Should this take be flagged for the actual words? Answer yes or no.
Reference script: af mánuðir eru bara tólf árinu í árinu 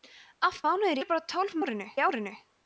no